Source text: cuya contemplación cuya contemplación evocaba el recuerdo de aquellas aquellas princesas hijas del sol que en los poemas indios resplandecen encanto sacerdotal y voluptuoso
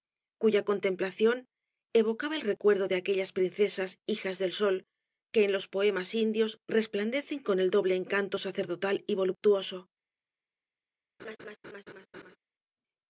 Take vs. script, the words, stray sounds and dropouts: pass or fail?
fail